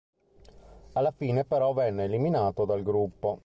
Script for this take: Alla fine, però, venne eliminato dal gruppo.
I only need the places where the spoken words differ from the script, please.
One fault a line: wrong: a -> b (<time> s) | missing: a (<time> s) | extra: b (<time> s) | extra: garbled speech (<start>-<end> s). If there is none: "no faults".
no faults